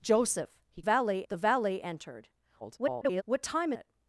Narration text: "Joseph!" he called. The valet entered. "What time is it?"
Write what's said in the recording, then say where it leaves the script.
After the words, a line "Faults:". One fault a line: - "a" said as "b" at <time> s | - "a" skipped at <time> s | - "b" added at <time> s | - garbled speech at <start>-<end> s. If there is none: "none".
"Joseph!" he valet. The valet entered. [garbled] "What time it?"
Faults:
- "called" said as "valet" at 0.8 s
- garbled speech at 2.6-3.2 s
- "is" skipped at 3.7 s